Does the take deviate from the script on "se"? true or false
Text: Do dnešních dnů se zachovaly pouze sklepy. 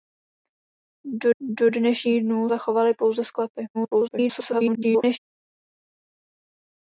true